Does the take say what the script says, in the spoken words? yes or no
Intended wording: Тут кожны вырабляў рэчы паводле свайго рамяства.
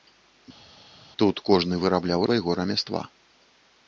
no